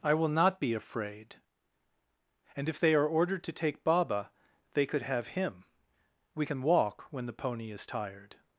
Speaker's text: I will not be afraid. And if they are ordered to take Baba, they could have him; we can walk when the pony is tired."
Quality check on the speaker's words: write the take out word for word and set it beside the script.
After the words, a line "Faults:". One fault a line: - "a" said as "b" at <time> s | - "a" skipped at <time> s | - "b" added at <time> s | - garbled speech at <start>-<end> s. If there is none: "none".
I will not be afraid. And if they are ordered to take Baba, they could have him; we can walk when the pony is tired."
Faults:
none